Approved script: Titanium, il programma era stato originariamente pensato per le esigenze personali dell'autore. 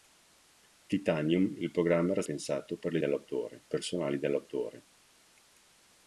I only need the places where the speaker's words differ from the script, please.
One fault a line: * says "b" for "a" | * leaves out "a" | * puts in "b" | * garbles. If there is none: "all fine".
* leaves out "stato originariamente"
* says "dell'autore" for "esigenze"